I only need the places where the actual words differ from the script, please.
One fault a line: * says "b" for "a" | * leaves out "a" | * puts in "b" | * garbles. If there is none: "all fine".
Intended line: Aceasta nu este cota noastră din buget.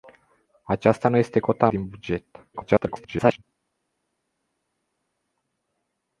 * leaves out "noastră"
* garbles